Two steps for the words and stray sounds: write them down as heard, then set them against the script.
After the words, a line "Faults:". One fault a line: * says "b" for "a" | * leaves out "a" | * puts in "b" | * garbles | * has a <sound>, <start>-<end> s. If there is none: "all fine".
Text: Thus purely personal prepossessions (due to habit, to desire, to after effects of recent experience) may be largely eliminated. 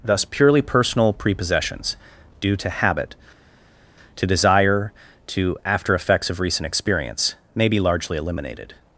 Thus purely personal prepossessions (due to habit, to desire, to after effects of recent experience) may be largely eliminated.
Faults:
all fine